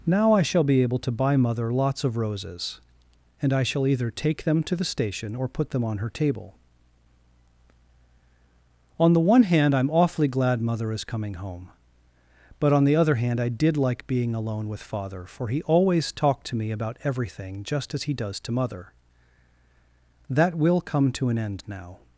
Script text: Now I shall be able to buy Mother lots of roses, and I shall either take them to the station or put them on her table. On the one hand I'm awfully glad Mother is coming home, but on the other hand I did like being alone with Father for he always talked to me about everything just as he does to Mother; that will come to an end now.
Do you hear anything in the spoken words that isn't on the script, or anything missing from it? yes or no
no